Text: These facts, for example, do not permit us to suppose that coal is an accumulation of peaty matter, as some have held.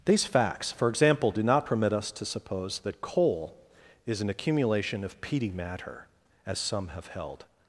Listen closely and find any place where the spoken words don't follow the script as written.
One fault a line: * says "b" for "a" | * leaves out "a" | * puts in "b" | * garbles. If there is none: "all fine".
all fine